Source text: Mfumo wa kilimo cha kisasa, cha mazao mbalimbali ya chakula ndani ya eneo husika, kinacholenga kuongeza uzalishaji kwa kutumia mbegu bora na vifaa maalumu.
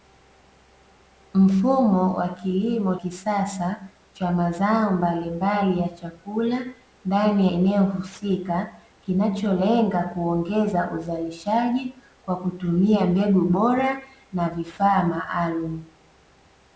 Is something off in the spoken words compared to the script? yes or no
yes